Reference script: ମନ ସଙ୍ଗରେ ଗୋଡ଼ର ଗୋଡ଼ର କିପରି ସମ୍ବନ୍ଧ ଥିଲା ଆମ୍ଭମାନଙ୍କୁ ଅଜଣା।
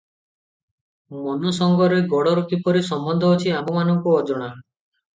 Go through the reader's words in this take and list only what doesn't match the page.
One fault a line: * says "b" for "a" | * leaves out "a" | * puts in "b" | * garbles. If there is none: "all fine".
* leaves out "ଗୋଡ଼ର"
* says "ଅଛି" for "ଥିଲା"